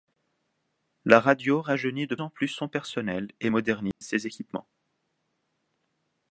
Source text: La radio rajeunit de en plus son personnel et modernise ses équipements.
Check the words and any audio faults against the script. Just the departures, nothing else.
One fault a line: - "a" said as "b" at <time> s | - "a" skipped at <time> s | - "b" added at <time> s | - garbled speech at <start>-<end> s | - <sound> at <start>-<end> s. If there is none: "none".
- dropout at 3.9-4.0 s